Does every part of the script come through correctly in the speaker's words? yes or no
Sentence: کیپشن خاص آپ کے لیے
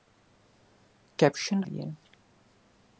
no